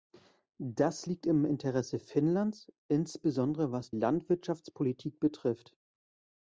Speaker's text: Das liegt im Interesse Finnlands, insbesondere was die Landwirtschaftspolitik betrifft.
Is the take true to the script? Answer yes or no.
no